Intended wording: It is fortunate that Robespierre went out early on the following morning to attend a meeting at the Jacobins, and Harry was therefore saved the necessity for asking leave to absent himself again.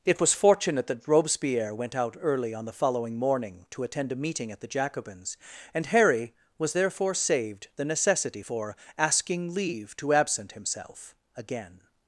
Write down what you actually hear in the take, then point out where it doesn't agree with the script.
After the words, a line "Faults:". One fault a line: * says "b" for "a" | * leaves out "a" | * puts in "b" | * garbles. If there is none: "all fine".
It was fortunate that Robespierre went out early on the following morning to attend a meeting at the Jacobins, and Harry was therefore saved the necessity for asking leave to absent himself again.
Faults:
* says "was" for "is"